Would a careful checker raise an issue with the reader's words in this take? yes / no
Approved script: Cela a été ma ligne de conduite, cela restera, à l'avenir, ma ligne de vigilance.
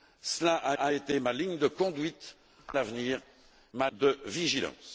yes